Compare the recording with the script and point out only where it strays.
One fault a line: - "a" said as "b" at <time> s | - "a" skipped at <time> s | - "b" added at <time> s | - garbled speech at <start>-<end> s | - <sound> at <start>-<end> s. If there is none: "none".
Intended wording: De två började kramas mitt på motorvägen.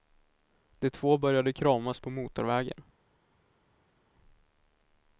- "mitt" skipped at 2.0 s